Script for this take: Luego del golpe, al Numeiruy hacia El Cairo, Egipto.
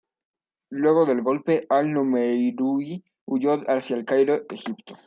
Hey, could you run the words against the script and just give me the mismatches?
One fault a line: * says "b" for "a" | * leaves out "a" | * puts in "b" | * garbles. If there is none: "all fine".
* puts in "huyó"